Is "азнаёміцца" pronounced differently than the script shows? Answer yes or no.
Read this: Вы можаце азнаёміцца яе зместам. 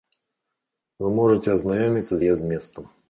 no